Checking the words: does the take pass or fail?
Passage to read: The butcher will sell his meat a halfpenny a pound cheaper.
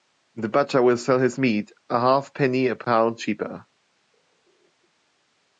pass